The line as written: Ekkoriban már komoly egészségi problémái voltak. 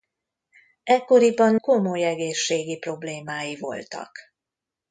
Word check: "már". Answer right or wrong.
wrong